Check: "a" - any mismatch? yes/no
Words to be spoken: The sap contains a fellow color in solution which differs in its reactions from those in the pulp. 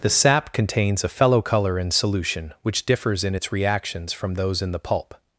no